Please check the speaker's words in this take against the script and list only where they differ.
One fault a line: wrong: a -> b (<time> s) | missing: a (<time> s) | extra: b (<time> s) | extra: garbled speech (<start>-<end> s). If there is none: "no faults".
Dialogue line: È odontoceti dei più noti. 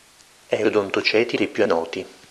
no faults